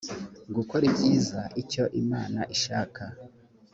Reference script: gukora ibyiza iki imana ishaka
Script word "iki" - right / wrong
wrong